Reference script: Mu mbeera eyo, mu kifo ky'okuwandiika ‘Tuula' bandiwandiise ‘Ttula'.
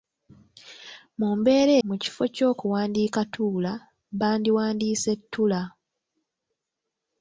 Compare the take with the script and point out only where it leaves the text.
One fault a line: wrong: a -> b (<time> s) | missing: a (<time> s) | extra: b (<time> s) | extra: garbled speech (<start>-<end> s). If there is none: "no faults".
missing: eyo (1.7 s)